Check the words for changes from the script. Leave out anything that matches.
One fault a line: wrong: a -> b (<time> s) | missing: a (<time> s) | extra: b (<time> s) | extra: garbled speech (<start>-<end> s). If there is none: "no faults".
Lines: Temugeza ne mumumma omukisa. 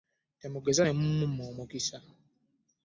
no faults